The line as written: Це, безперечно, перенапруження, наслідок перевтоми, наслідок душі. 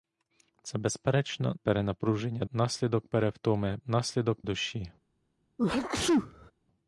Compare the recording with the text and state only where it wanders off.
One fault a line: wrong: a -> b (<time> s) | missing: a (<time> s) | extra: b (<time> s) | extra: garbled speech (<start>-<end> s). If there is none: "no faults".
no faults